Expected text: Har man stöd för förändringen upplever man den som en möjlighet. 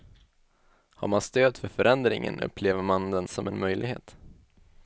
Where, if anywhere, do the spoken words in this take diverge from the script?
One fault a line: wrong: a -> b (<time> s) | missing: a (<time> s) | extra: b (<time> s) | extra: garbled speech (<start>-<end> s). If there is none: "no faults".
no faults